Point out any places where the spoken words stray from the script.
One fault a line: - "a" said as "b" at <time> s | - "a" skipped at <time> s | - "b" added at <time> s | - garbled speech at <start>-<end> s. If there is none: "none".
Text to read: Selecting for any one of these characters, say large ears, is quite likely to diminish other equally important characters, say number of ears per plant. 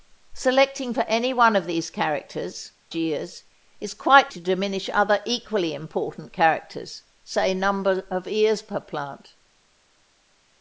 - "say large" skipped at 2.7 s
- "likely" skipped at 4.3 s